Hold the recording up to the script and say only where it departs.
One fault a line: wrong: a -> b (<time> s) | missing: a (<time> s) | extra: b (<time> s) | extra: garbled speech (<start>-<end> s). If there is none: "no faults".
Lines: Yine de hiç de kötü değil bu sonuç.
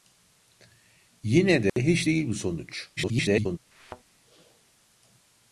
missing: de kötü (2.1 s)
extra: garbled speech (3.0-3.6 s)